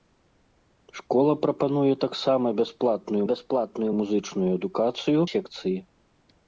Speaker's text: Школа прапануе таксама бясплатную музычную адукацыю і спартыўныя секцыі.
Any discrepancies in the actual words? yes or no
yes